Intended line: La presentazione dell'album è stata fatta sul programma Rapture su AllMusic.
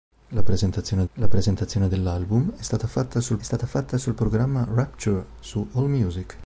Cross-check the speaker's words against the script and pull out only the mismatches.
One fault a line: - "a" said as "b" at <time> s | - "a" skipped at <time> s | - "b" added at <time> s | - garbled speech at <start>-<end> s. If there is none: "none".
- "la presentazione" added at 1.1 s
- "stata fatta sul" added at 3.4 s